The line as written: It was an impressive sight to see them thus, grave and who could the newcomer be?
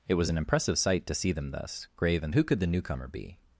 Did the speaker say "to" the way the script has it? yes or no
yes